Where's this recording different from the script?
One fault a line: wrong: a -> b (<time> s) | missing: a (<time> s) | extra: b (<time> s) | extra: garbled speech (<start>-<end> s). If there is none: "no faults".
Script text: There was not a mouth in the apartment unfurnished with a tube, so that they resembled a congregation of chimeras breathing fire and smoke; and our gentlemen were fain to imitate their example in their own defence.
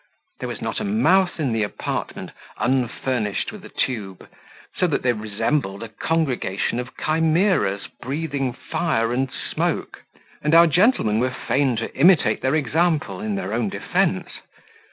no faults